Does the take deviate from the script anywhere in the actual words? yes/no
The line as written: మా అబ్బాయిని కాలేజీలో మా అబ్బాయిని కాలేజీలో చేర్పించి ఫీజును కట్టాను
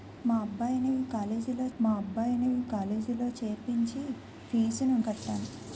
no